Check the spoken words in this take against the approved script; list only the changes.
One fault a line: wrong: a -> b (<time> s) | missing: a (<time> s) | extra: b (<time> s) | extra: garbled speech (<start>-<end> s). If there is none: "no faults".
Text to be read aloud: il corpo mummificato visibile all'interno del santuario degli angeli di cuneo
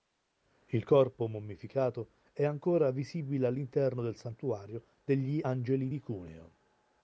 extra: è ancora (2.3 s)